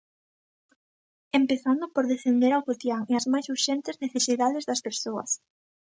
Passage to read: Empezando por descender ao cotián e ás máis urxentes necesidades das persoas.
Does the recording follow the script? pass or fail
pass